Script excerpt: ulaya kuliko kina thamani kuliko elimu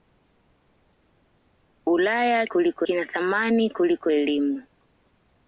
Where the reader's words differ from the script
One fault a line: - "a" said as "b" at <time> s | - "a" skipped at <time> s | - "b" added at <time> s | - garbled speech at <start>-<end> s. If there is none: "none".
none